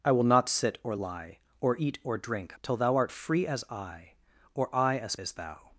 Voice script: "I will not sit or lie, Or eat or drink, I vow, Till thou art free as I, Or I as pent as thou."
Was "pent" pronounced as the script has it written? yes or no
no